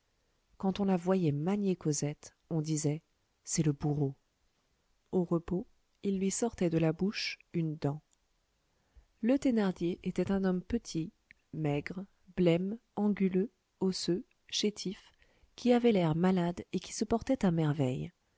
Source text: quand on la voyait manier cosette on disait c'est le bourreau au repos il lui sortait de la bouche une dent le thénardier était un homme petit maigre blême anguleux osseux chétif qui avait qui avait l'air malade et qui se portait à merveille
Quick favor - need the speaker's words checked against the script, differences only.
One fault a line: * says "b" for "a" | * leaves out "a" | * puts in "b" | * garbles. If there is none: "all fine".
* leaves out "qui avait"